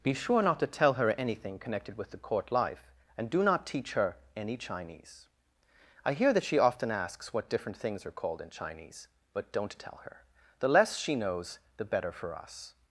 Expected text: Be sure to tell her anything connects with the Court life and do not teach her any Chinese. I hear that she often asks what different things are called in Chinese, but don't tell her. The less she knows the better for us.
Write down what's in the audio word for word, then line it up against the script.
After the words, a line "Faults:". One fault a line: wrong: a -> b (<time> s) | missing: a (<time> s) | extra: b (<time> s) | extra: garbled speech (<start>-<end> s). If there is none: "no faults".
Be sure not to tell her anything connected with the Court life and do not teach her any Chinese. I hear that she often asks what different things are called in Chinese, but don't tell her. The less she knows the better for us.
Faults:
extra: not (0.4 s)
wrong: connects -> connected (1.6 s)